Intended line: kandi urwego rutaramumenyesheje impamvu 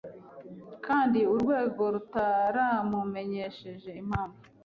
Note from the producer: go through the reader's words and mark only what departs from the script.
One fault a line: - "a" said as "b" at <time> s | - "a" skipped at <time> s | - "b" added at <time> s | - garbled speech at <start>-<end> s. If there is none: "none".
none